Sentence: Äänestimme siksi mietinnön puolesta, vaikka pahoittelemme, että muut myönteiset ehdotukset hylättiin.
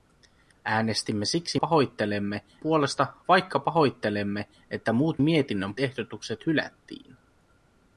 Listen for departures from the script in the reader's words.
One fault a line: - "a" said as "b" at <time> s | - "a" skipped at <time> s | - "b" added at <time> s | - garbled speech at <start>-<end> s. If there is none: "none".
- "mietinnön" said as "pahoittelemme" at 1.5 s
- "myönteiset" said as "mietinnön" at 5.2 s